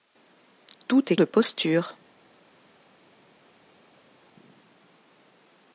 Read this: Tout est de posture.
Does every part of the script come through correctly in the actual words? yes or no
yes